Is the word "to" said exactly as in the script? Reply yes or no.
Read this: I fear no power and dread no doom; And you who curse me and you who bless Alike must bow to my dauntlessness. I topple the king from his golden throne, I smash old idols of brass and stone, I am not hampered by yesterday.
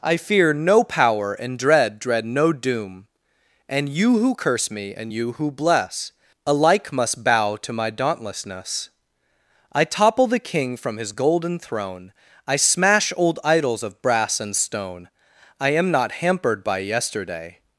yes